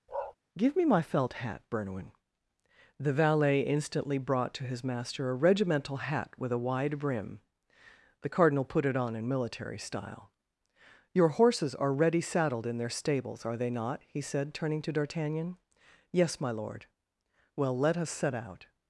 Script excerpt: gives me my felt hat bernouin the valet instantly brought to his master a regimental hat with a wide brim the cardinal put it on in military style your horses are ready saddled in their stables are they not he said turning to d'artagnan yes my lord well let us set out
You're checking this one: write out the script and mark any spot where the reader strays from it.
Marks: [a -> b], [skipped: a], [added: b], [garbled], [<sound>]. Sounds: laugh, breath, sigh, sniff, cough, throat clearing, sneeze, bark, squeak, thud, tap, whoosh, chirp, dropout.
[bark] [gives -> give] me my felt hat bernouin the valet instantly brought to his master a regimental hat with a wide brim the cardinal put it on in military style your horses are ready saddled in their stables are they not he said turning to d'artagnan yes my lord well let us set out